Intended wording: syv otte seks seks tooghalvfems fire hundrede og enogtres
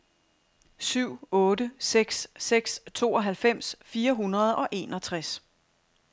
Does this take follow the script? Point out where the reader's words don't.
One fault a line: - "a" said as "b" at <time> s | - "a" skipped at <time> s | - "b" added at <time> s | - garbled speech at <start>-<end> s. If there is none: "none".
none